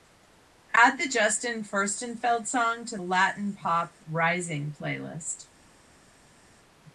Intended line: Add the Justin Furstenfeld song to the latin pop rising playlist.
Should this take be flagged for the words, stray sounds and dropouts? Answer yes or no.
yes